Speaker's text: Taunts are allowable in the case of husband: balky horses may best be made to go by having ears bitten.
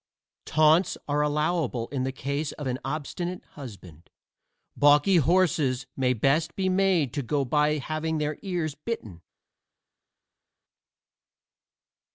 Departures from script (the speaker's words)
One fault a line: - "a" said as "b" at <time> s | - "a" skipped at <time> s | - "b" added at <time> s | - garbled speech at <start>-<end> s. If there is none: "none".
- "an obstinate" added at 2.6 s
- "their" added at 8.2 s